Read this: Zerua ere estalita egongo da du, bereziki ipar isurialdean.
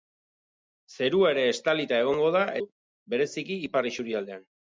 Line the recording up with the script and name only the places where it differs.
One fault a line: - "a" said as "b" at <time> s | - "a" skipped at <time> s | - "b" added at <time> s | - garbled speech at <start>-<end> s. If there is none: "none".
none